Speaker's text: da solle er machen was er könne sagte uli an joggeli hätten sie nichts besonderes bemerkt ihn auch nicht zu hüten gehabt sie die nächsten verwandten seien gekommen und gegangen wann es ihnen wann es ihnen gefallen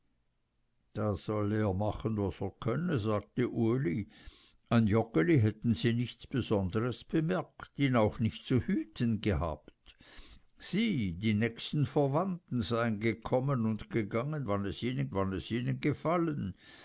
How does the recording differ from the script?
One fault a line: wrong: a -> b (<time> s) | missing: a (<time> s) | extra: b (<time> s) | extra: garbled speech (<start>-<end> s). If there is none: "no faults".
no faults